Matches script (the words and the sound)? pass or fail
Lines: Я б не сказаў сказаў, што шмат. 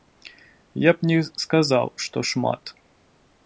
fail